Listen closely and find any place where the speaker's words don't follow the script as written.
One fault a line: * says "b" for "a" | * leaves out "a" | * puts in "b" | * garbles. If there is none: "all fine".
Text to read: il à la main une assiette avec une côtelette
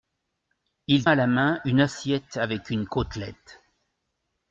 all fine